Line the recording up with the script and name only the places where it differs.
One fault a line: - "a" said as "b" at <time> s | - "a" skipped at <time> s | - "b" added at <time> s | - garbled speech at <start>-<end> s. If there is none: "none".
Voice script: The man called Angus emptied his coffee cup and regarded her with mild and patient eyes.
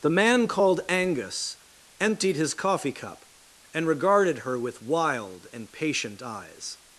- "mild" said as "wild" at 4.8 s